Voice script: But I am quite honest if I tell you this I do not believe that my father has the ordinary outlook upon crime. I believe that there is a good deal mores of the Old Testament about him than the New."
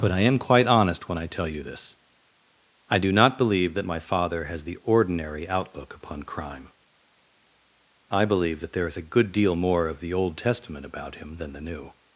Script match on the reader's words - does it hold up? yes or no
no